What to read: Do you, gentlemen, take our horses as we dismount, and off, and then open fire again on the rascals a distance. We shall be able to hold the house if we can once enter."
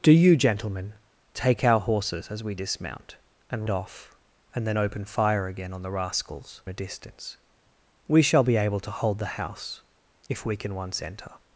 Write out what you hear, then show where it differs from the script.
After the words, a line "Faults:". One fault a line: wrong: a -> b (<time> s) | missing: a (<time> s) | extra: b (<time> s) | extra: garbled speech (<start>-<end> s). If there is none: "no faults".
Do you, gentlemen, take our horses as we dismount, and off, and then open fire again on the rascals a distance. We shall be able to hold the house if we can once enter."
Faults:
no faults